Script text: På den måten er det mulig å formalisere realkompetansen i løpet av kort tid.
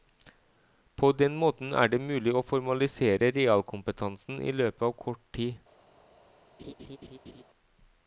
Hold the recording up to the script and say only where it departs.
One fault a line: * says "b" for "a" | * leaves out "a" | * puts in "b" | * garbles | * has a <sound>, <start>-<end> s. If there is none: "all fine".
* has a laugh, 6.6-7.4 s